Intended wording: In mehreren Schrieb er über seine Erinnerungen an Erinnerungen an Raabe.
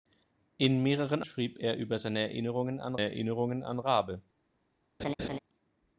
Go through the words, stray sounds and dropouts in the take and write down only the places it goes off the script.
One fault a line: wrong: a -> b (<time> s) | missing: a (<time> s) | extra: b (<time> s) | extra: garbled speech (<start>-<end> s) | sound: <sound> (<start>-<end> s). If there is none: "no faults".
sound: laugh (5.0-5.4 s)